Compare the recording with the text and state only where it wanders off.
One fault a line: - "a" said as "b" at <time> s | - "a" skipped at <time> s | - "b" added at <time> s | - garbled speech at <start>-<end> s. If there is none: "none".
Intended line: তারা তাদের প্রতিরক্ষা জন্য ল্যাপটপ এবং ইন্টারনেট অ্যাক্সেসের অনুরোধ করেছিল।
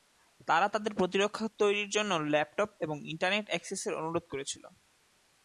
- "তৈরির" added at 1.6 s